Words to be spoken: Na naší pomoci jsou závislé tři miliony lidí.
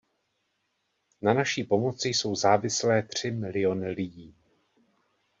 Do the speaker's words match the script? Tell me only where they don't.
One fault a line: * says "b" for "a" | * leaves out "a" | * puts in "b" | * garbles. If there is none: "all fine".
all fine